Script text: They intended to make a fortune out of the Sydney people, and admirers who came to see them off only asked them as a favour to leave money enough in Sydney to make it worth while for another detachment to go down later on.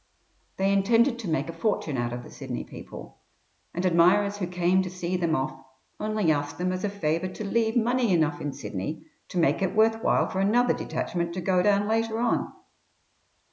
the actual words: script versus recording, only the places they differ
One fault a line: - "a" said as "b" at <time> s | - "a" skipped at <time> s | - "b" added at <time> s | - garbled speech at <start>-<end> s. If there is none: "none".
none